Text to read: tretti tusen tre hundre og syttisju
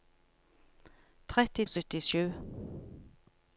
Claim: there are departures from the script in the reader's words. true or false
true